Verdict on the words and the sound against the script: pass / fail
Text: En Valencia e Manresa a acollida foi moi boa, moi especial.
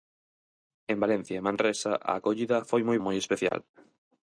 fail